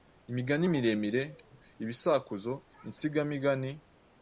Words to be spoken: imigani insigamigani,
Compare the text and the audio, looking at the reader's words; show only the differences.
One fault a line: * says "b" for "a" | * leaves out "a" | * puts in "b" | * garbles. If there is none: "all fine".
* puts in "miremire ibisakuzo"